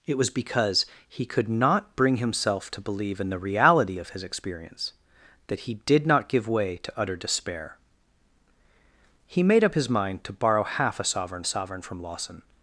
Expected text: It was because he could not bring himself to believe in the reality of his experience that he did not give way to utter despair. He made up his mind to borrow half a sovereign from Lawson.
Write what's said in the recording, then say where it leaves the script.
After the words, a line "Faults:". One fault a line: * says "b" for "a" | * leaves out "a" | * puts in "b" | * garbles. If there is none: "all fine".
It was because he could not bring himself to believe in the reality of his experience that he did not give way to utter despair. He made up his mind to borrow half a sovereign sovereign from Lawson.
Faults:
* puts in "sovereign"